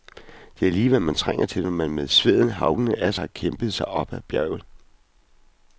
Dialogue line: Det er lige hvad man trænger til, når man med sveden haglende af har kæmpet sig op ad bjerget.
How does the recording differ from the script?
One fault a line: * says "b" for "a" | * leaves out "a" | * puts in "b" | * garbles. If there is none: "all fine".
all fine